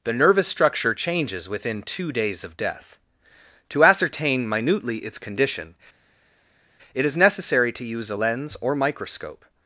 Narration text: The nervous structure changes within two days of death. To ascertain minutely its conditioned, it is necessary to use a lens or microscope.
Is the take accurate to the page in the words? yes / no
no